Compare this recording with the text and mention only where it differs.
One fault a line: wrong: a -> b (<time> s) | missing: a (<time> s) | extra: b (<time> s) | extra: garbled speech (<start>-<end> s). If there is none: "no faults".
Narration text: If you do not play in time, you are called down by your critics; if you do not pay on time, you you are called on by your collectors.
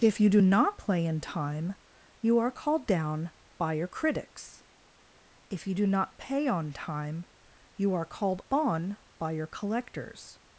missing: you (7.9 s)